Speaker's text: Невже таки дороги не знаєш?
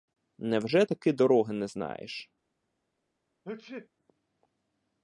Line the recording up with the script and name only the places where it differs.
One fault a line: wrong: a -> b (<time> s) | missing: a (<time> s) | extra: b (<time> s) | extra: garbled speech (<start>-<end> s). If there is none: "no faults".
no faults